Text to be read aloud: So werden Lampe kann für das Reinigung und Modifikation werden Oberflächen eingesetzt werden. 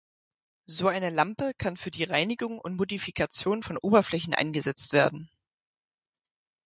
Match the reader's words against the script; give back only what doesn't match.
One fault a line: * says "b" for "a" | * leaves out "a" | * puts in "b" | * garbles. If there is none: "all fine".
* says "eine" for "werden"
* says "die" for "das"
* says "von" for "werden"